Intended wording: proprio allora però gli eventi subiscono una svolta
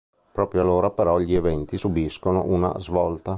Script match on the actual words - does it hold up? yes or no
yes